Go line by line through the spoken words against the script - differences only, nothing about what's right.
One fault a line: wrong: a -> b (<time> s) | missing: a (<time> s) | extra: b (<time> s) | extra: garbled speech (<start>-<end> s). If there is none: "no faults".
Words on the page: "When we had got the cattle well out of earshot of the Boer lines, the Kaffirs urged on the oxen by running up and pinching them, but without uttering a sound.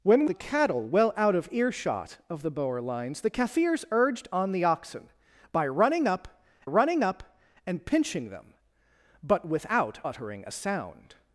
missing: we had got (0.2 s)
extra: running up (6.6 s)